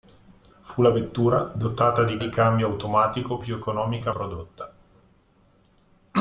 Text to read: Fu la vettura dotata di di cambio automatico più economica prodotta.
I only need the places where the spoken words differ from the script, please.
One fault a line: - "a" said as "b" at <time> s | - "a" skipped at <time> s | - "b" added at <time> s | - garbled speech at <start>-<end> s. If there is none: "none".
none